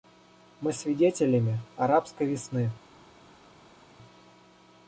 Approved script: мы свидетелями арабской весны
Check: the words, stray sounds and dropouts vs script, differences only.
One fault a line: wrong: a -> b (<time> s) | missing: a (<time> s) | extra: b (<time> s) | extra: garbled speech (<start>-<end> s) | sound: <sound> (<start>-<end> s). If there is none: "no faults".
no faults